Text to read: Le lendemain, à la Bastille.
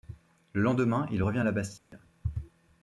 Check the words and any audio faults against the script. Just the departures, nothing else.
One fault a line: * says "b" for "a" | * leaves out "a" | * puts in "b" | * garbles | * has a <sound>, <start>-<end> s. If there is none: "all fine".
* puts in "il revient"
* has a dropout, 1.8-1.9 s